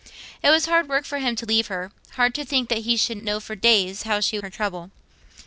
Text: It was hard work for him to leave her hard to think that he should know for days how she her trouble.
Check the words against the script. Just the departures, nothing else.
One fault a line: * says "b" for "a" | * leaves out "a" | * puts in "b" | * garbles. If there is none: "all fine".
all fine